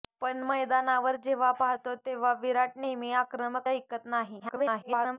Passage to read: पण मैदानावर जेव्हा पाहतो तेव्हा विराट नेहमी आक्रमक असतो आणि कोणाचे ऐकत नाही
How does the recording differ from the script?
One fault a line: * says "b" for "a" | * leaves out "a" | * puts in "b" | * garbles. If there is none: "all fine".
* leaves out "असतो आणि कोणाचे"
* garbles